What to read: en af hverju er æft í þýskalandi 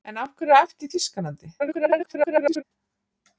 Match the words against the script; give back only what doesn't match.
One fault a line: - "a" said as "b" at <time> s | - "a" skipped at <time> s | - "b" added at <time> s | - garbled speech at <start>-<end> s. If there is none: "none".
- garbled speech at 1.6-2.6 s